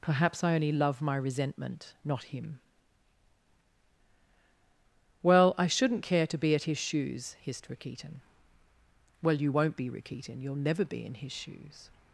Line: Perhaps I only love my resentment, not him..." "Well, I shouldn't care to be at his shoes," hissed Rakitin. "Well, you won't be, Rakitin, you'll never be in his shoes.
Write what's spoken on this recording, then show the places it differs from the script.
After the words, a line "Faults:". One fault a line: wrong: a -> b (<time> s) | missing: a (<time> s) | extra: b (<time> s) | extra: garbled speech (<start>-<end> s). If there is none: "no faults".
Perhaps I only love my resentment, not him..." "Well, I shouldn't care to be at his shoes," hissed Rakitin. "Well, you won't be, Rakitin, you'll never be in his shoes.
Faults:
no faults